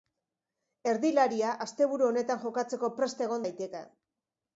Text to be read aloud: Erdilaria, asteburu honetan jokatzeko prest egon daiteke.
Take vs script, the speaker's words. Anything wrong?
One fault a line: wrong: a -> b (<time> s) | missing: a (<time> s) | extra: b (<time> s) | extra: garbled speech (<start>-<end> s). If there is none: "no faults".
no faults